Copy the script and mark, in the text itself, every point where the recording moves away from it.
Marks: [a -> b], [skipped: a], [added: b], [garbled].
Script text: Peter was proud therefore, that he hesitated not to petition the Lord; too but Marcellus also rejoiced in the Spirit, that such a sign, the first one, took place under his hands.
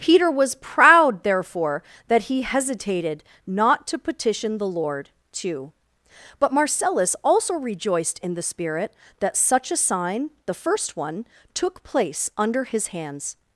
Peter was proud therefore, that he hesitated not to petition the Lord; too but Marcellus also rejoiced in the Spirit, that such a sign, the first one, took place under his hands.